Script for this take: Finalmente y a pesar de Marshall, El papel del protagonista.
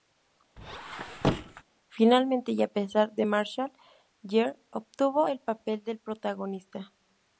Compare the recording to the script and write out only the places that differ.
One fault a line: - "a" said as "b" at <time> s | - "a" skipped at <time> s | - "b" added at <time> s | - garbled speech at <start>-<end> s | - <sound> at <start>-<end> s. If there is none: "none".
- squeak at 0.6-1.6 s
- "Gere obtuvo" added at 4.3 s